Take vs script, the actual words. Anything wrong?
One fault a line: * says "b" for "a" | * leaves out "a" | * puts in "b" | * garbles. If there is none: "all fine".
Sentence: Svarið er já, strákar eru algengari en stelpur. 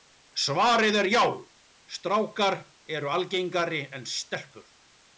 all fine